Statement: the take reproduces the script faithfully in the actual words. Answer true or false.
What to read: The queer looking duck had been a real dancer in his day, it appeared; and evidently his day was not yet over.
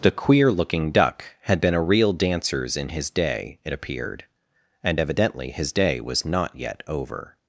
false